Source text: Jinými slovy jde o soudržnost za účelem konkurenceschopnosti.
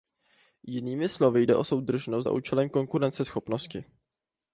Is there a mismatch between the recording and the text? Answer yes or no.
no